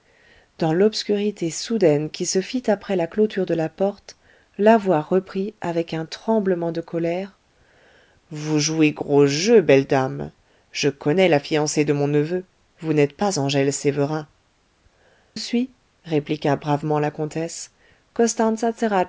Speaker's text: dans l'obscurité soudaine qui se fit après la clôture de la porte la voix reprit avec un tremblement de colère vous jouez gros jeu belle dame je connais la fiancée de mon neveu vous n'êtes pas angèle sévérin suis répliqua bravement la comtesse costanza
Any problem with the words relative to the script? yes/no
no